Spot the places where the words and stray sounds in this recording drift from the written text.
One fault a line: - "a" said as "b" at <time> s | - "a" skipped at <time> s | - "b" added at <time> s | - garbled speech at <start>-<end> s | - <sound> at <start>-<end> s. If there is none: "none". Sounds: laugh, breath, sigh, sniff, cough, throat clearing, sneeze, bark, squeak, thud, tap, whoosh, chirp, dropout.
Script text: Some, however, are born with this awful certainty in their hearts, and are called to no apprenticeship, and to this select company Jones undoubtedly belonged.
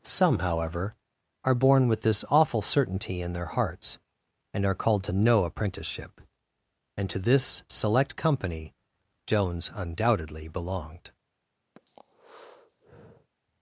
- breath at 11.8-13.3 s